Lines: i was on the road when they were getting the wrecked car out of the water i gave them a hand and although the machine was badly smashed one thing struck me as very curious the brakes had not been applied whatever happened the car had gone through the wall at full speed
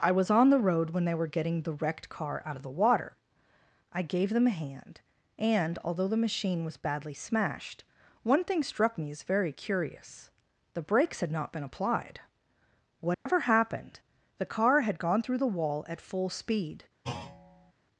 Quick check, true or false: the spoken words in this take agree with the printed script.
true